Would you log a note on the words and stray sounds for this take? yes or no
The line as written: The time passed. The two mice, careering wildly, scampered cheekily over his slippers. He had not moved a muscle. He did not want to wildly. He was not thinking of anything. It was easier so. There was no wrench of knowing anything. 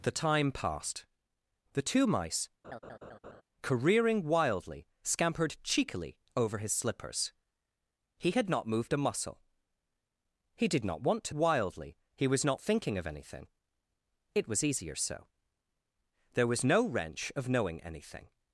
yes